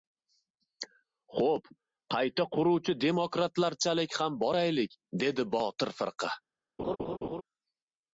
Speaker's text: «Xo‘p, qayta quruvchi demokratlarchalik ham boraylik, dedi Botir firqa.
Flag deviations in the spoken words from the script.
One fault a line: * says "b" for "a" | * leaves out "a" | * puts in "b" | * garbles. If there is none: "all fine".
all fine